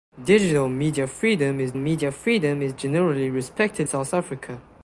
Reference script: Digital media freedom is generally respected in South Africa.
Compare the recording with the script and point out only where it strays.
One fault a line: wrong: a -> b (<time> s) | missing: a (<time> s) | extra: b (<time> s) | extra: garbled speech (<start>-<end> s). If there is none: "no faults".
extra: media freedom is (1.7 s)
missing: in (3.9 s)